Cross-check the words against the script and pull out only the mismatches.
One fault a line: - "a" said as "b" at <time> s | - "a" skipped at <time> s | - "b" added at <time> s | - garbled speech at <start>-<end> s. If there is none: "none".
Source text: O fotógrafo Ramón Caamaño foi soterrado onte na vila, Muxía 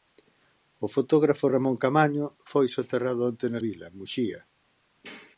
none